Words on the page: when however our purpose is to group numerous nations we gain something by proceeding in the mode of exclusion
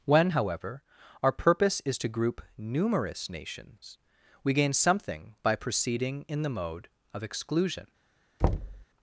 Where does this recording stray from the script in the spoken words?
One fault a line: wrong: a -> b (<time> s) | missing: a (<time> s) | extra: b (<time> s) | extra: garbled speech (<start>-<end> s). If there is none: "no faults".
no faults